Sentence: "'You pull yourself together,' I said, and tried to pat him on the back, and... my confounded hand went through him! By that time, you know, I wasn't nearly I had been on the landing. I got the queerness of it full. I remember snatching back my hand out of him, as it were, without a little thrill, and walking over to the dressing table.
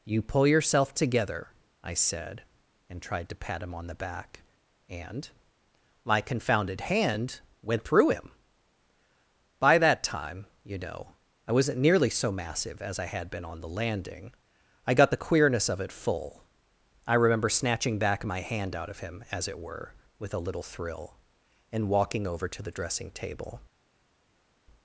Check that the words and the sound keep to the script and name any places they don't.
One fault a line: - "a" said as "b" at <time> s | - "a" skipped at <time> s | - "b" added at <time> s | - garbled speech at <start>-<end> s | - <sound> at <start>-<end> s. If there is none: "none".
- "so massive as" added at 12.1 s
- "without" said as "with" at 20.2 s